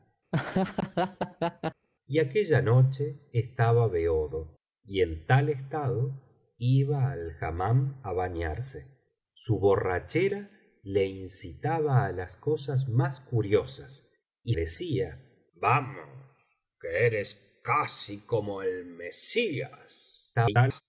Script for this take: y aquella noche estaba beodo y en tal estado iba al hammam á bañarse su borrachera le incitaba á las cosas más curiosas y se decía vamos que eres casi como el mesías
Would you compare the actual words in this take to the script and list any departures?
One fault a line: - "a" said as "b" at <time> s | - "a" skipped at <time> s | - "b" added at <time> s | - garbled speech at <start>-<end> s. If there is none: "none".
- "se" skipped at 14.6 s
- garbled speech at 20.3-20.8 s